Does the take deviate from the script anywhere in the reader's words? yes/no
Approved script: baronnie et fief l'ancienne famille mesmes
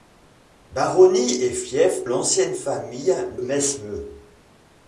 no